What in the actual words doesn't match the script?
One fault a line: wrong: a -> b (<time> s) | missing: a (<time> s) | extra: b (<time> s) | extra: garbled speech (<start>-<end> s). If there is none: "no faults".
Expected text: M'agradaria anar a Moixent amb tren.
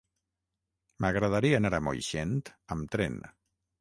no faults